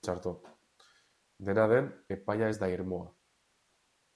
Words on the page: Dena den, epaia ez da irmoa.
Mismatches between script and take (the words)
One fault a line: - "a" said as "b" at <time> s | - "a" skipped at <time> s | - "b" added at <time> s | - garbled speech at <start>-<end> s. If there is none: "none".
none